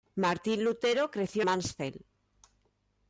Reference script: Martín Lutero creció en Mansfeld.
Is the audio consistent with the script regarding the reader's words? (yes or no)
no